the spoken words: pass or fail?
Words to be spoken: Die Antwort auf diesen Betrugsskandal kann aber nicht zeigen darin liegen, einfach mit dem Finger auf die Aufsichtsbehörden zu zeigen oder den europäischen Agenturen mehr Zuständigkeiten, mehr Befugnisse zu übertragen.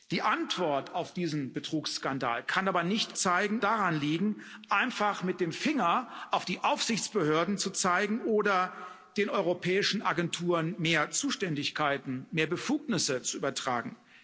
pass